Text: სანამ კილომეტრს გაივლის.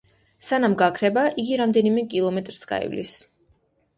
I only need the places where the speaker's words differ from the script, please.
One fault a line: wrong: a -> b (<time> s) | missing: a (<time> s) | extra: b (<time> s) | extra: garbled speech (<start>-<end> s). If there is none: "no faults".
extra: გაქრება იგი რამდენიმე (0.8 s)